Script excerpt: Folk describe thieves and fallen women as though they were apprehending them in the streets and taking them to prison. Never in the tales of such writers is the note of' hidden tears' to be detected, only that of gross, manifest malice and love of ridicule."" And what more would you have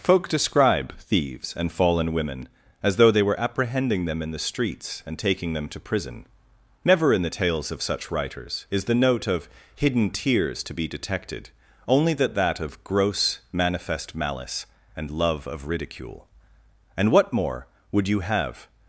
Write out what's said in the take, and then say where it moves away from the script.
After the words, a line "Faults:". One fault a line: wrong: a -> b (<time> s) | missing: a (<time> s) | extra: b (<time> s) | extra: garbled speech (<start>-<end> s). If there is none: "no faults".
Folk describe thieves and fallen women as though they were apprehending them in the streets and taking them to prison. Never in the tales of such writers is the note of' hidden tears' to be detected, only that that of gross, manifest malice and love of ridicule."" And what more would you have
Faults:
extra: that (12.3 s)